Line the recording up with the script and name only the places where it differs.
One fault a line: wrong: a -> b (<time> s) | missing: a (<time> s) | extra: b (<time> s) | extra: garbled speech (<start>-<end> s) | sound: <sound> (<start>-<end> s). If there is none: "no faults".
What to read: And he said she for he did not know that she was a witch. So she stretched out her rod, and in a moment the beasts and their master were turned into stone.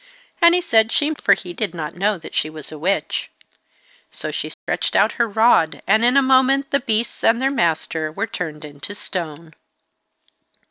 sound: dropout (4.5-4.7 s)